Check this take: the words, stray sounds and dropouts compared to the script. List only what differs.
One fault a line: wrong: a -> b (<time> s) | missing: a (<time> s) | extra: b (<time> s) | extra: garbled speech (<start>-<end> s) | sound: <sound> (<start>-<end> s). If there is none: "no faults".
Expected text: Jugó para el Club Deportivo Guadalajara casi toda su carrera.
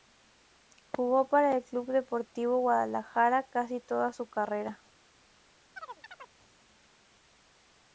sound: chirp (5.8-6.4 s)